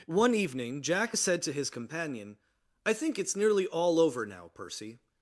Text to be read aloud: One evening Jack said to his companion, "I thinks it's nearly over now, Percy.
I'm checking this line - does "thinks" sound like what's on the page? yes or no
no